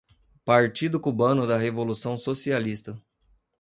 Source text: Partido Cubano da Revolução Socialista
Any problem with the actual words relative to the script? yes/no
no